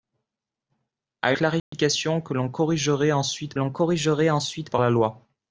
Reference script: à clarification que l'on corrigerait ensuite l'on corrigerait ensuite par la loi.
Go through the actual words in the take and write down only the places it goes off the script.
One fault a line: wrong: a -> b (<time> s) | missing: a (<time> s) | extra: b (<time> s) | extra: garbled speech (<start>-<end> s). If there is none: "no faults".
no faults